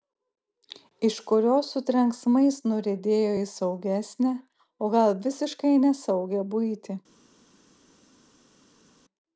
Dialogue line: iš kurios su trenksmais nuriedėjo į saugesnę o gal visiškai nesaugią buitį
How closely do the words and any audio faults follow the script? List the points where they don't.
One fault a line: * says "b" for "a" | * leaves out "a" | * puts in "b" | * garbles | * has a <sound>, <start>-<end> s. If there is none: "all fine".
all fine